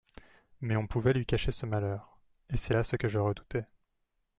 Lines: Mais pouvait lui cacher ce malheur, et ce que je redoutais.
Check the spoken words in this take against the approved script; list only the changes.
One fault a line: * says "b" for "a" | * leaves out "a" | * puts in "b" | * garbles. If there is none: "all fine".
* puts in "on"
* puts in "c'est là"